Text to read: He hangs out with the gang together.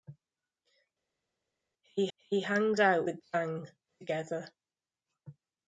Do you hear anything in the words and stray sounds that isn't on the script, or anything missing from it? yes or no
yes